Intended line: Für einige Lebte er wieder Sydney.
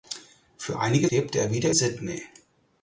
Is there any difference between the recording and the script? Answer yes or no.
no